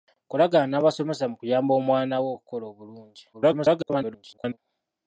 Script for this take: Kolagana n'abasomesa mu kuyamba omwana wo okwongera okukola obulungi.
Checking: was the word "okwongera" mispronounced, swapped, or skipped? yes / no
yes